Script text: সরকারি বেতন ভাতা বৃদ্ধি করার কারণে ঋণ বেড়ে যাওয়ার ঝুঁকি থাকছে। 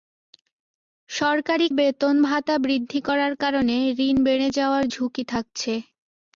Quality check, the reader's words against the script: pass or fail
pass